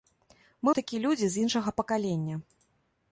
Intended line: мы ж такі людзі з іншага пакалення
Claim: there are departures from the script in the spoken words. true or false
false